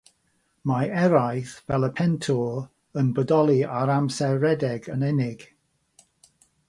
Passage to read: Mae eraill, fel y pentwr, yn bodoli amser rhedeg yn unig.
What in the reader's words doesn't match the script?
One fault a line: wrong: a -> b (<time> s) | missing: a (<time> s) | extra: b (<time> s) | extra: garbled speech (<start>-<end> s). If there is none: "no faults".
extra: ar (3.8 s)